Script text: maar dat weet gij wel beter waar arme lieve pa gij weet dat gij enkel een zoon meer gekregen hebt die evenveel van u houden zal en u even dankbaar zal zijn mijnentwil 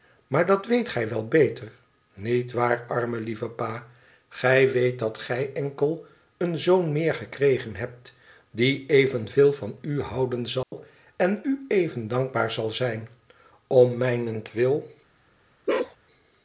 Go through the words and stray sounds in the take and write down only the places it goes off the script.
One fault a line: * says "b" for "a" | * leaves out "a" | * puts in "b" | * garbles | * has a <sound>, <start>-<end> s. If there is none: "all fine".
* puts in "niet"
* has a dropout, 10.6-10.7 s
* puts in "om"
* has a bark, 15.7-16.0 s